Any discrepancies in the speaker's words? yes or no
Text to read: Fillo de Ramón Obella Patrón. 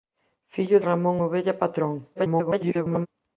yes